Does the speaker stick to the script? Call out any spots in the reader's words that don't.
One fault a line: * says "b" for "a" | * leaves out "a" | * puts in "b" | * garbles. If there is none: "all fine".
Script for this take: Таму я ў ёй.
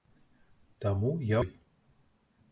* leaves out "ў"